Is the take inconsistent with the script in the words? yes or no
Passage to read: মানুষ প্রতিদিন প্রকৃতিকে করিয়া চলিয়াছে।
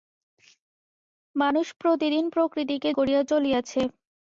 no